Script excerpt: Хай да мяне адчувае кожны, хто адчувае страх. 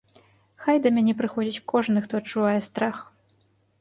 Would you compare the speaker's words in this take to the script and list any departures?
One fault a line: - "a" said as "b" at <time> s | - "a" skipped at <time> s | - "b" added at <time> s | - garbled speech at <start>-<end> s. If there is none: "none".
- "адчувае" said as "прыходзіць" at 1.2 s